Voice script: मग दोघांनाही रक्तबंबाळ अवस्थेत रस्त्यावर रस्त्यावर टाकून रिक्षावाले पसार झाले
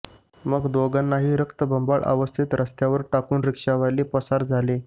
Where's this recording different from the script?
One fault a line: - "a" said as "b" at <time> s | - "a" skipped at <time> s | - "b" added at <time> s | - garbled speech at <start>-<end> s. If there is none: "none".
- "रस्त्यावर" skipped at 3.0 s